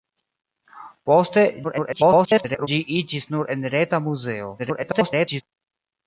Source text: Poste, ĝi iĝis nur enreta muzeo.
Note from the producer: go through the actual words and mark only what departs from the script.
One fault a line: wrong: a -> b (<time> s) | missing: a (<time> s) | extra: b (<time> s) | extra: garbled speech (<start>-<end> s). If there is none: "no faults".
extra: garbled speech (1.6-2.7 s)
extra: garbled speech (4.6-5.4 s)